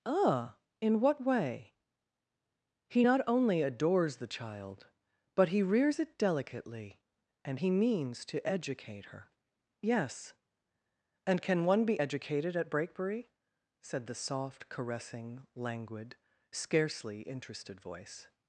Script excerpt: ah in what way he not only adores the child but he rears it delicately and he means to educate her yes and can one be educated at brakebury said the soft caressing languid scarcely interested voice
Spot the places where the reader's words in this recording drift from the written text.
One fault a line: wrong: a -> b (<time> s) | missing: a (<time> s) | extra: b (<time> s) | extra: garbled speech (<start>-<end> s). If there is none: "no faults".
no faults